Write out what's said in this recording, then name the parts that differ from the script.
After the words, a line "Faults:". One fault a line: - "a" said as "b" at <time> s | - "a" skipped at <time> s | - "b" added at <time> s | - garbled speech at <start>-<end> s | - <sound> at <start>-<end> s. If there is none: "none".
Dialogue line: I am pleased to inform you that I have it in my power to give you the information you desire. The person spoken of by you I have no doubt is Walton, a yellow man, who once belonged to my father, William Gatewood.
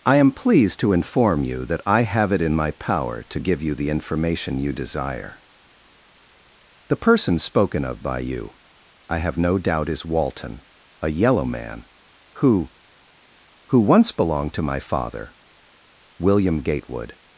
I am pleased to inform you that I have it in my power to give you the information you desire. The person spoken of by you I have no doubt is Walton, a yellow man, who who once belonged to my father, William Gatewood.
Faults:
- "who" added at 13.7 s